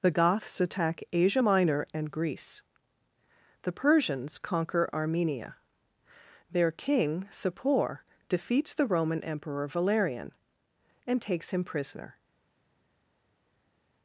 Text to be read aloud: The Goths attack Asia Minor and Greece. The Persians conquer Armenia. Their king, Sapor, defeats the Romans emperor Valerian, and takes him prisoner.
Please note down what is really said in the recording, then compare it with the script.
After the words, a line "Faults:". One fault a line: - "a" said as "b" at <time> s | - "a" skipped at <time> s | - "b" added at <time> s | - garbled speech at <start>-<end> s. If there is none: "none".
The Goths attack Asia Minor and Greece. The Persians conquer Armenia. Their king, Sapor, defeats the Roman emperor Valerian, and takes him prisoner.
Faults:
- "Romans" said as "Roman" at 8.9 s